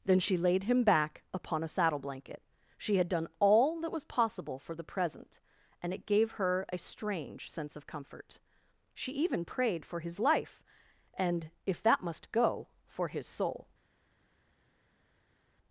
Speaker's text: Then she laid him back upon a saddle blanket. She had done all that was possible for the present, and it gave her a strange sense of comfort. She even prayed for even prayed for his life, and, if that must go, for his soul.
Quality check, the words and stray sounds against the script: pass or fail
fail